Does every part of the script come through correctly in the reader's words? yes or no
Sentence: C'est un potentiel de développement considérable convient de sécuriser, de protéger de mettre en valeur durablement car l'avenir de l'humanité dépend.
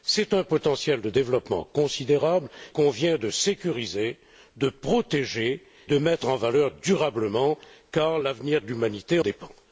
yes